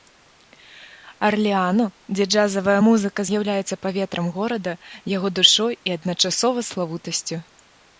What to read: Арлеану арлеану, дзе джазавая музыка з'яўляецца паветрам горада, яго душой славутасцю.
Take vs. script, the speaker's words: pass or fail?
fail